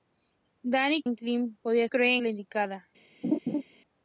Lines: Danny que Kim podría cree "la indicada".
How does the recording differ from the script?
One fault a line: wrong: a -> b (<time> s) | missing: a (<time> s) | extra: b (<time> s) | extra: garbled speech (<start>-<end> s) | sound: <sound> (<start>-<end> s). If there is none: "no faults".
sound: laugh (3.2-3.6 s)